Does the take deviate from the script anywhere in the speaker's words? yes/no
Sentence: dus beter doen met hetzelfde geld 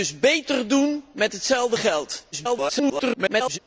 yes